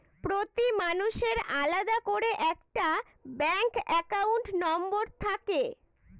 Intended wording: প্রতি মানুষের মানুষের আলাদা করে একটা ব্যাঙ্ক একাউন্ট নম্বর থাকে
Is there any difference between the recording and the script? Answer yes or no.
yes